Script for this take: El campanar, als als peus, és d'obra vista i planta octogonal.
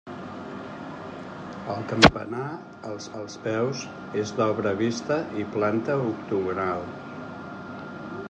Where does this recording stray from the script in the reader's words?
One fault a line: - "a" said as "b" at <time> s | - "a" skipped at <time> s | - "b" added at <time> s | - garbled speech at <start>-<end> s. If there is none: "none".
none